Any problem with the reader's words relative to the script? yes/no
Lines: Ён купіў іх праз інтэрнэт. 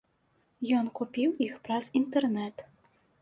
no